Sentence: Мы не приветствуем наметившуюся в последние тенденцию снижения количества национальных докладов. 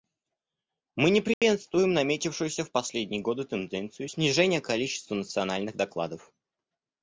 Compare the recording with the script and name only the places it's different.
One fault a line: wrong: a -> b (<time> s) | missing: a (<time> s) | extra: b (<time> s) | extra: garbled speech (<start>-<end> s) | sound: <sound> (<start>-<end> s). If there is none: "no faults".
sound: dropout (1.3-1.4 s)
extra: годы (3.2 s)